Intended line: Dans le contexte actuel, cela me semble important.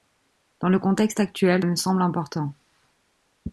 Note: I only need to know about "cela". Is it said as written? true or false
false